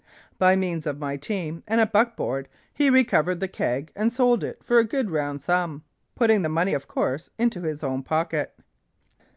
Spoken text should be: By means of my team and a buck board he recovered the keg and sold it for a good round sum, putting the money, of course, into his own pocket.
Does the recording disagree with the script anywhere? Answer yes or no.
no